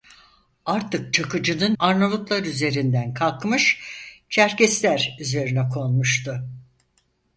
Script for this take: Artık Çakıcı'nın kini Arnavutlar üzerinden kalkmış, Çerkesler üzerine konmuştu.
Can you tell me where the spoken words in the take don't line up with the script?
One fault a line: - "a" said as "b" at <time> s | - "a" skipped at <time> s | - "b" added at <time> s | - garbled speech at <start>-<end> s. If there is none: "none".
- "kini" skipped at 1.8 s